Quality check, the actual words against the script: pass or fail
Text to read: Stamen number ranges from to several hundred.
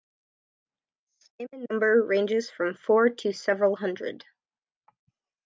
fail